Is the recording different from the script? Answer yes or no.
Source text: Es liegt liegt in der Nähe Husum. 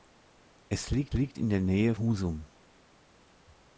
no